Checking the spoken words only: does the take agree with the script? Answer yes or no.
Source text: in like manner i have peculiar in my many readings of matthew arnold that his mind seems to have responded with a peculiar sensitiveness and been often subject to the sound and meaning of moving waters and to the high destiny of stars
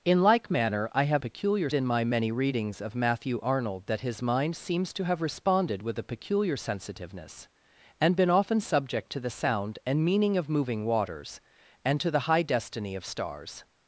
yes